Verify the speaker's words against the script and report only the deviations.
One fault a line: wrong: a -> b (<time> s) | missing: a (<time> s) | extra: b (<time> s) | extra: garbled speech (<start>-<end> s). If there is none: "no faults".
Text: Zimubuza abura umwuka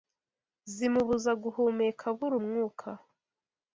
extra: guhumeka (1.4 s)